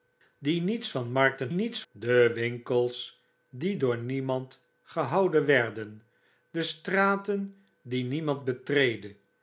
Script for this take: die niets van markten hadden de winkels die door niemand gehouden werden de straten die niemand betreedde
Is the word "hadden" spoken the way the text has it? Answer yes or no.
no